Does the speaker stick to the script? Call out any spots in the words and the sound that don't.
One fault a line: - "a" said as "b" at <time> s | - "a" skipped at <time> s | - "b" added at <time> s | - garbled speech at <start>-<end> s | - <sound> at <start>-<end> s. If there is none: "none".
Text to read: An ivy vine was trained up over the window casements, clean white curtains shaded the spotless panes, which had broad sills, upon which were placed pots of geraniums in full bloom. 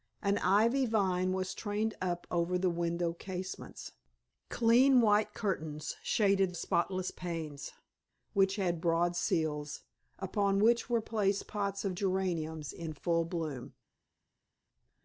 - "the" skipped at 6.5 s